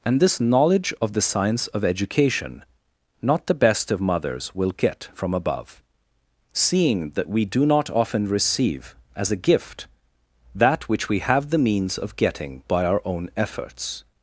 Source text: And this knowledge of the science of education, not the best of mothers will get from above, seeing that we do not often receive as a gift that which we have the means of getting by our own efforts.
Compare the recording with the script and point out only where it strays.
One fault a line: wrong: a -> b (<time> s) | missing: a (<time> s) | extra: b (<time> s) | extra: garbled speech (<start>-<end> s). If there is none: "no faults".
no faults